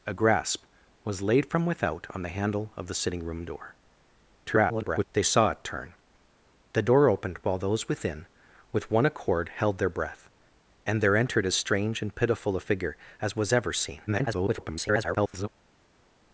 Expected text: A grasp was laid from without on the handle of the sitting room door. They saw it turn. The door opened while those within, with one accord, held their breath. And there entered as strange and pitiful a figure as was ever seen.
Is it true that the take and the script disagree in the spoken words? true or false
true